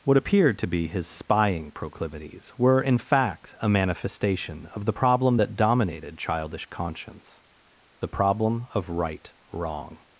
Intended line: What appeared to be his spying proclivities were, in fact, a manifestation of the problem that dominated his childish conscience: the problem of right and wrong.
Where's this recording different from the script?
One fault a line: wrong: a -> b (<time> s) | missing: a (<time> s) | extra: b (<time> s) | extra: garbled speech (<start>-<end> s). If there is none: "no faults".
missing: his (6.2 s)
missing: and (9.3 s)